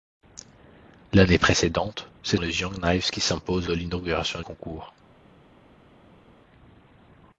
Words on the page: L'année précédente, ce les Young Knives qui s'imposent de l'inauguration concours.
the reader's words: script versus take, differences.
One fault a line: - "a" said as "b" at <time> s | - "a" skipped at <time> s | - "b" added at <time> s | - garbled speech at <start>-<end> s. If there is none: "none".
none